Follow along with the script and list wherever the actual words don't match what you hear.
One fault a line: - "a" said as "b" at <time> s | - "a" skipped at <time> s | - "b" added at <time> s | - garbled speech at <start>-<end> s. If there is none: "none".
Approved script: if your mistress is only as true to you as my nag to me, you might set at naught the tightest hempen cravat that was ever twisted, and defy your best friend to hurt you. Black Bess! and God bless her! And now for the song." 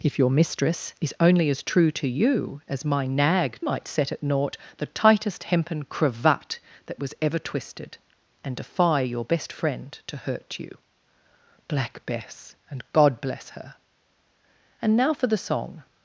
- "to me you" skipped at 3.6 s